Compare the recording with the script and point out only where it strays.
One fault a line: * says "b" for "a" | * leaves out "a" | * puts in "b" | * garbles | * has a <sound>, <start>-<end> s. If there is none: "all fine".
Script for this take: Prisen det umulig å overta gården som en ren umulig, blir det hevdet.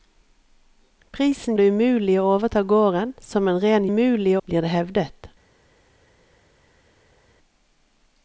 all fine